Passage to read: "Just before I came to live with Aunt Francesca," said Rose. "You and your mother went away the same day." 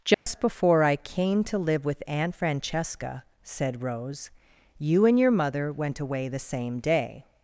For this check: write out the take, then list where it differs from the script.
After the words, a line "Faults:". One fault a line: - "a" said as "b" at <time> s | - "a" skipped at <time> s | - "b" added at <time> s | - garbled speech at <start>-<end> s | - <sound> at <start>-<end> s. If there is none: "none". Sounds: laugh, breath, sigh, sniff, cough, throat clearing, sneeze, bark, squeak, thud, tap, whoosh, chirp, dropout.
"Just before I came to live with Aunt Francesca," said Rose. "You and your mother went away the same day."
Faults:
- dropout at 0.1-0.3 s